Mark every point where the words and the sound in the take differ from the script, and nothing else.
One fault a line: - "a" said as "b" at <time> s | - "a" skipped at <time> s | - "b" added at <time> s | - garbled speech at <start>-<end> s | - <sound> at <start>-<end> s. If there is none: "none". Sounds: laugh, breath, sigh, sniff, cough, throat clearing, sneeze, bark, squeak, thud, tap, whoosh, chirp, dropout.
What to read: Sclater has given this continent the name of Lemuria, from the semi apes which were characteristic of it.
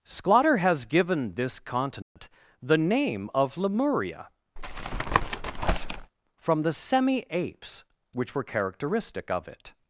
- dropout at 2.0-2.2 s
- tap at 4.6-6.1 s